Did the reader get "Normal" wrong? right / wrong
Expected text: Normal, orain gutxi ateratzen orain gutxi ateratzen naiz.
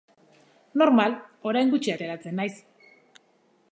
right